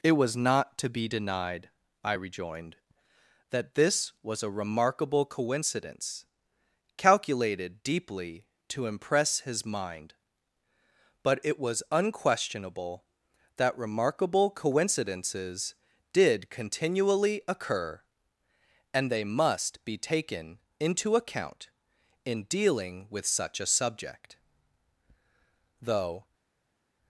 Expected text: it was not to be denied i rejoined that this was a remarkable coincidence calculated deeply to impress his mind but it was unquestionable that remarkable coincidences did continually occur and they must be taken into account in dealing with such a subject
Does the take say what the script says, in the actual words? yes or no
no